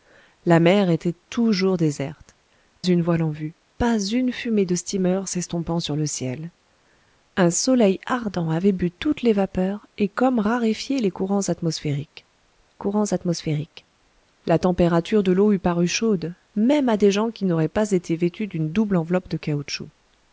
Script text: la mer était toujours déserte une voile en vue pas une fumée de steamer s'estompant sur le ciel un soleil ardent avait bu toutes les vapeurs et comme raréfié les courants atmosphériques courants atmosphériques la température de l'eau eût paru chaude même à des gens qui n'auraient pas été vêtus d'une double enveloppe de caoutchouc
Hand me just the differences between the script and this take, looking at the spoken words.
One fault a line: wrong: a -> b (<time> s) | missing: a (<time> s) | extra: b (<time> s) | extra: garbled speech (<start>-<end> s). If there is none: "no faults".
no faults